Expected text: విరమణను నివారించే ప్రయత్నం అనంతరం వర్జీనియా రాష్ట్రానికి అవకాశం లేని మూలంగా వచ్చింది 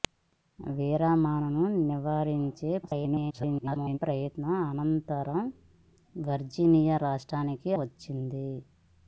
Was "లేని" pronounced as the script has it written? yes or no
no